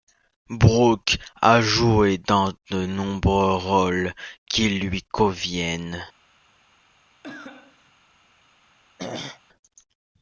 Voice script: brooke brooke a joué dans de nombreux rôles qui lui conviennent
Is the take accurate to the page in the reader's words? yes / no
no